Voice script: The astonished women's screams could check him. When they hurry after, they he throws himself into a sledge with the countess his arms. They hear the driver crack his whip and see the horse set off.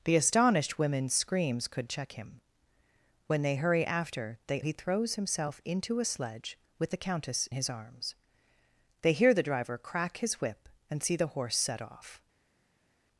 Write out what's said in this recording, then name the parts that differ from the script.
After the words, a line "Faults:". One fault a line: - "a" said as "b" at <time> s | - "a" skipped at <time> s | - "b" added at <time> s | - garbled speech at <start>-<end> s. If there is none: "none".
The astonished women's screams could check him. When they hurry after, they he throws himself into a sledge with the countess his arms. They hear the driver crack his whip and see the horse set off.
Faults:
none